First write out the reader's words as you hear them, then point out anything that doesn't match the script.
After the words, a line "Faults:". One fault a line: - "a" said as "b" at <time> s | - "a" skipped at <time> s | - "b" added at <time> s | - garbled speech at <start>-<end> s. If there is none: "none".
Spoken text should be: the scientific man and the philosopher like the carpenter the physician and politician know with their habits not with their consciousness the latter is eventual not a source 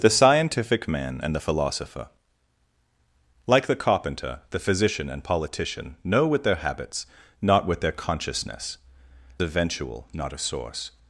the scientific man and the philosopher like the carpenter the physician and politician know with their habits not with their consciousness eventual not a source
Faults:
- "the latter is" skipped at 8.8 s